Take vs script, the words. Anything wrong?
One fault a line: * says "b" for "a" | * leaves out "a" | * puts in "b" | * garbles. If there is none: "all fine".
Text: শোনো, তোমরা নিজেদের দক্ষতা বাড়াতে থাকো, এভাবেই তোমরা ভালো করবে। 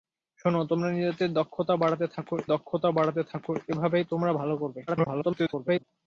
* puts in "দক্ষতা বাড়াতে থাকো"
* garbles